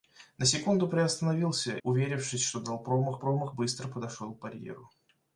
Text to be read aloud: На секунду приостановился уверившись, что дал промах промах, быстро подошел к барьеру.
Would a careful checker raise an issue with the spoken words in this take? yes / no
no